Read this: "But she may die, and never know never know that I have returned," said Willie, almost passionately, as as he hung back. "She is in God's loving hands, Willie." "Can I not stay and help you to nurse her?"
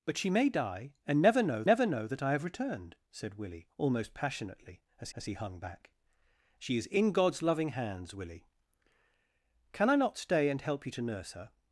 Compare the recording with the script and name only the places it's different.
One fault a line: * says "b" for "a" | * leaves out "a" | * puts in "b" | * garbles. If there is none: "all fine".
all fine